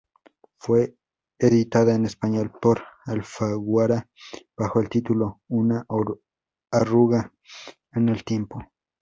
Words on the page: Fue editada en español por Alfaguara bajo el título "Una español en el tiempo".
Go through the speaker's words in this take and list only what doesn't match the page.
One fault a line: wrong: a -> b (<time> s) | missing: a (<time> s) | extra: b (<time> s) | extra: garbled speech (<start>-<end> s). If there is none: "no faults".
wrong: español -> arruga (6.7 s)